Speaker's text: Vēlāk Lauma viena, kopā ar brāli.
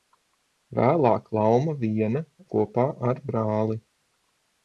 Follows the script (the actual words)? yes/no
yes